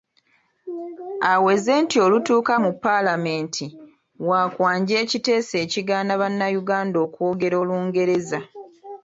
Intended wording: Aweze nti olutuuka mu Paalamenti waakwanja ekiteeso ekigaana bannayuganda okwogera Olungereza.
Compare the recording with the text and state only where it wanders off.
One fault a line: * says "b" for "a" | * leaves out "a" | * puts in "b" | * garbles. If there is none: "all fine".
all fine